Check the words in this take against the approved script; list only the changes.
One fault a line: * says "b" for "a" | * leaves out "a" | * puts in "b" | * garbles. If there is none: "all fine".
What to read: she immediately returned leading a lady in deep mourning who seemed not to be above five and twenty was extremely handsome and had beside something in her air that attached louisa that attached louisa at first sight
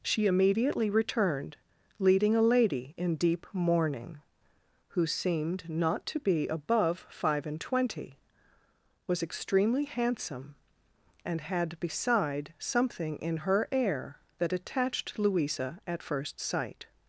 * leaves out "that attached louisa"